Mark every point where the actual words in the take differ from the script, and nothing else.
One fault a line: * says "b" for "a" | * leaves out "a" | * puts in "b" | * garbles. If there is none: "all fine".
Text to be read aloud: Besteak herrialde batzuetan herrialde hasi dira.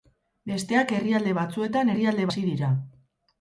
all fine